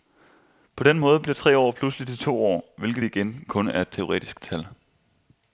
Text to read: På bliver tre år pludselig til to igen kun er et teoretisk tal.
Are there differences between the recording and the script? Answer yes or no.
yes